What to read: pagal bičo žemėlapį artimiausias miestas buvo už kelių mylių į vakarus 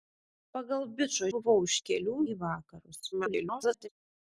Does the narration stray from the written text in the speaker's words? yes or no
yes